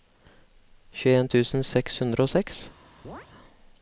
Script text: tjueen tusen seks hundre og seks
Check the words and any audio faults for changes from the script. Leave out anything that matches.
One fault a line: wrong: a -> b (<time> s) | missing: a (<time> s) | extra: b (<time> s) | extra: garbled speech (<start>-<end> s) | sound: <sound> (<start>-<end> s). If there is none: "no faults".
sound: chirp (3.0-3.3 s)